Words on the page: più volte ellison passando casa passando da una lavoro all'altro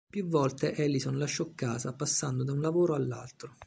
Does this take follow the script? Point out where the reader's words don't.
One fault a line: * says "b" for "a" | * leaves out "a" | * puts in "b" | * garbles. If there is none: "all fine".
* says "lasciò" for "passando"
* says "un" for "una"